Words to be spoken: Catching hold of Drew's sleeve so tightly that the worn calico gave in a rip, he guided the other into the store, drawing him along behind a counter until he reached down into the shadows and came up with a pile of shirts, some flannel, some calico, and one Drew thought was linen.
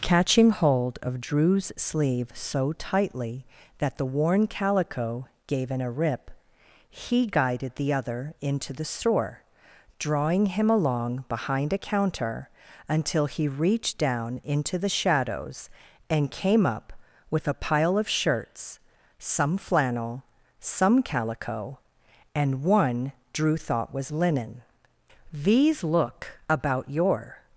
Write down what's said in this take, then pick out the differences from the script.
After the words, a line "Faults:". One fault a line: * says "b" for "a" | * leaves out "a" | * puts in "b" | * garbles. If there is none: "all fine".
Catching hold of Drew's sleeve so tightly that the worn calico gave in a rip, he guided the other into the store, drawing him along behind a counter until he reached down into the shadows and came up with a pile of shirts, some flannel, some calico, and one Drew thought was linen. "These look about your
Faults:
* puts in "These look about your"